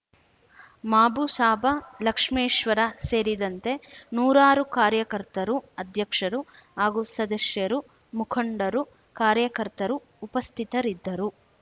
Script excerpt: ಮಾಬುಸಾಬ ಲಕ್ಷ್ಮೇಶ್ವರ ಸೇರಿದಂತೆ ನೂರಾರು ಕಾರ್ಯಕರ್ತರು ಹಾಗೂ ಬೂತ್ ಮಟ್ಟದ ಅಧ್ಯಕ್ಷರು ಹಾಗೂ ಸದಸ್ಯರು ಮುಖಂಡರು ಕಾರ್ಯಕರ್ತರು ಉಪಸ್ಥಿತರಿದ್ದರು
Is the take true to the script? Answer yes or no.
no